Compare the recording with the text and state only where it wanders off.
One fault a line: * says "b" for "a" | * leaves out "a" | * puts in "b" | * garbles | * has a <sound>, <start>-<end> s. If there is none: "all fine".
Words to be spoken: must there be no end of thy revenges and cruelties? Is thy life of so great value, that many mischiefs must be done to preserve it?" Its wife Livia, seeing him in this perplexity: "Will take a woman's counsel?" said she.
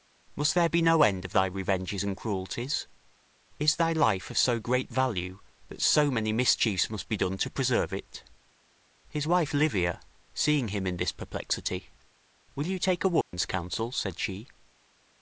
* puts in "so"
* says "His" for "Its"
* puts in "you"
* has a dropout, 13.2-13.3 s